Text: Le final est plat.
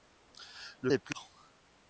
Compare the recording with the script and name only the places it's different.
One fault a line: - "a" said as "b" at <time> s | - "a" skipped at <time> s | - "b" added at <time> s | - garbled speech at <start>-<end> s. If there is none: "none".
- "final" skipped at 0.9 s